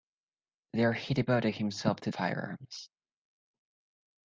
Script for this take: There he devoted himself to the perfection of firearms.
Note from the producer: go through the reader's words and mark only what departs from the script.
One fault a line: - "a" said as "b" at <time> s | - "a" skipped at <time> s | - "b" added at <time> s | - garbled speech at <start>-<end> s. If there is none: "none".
- "the perfection of" skipped at 2.1 s